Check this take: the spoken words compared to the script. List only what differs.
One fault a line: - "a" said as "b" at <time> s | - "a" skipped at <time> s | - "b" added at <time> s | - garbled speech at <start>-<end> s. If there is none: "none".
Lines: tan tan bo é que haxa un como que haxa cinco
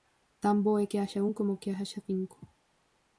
- "tan" skipped at 0.6 s